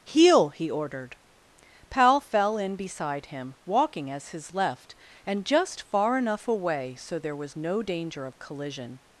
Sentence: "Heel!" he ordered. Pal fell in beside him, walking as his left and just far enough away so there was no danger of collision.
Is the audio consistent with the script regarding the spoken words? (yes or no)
yes